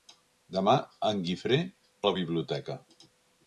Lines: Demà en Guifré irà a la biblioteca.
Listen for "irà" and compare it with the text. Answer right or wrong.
wrong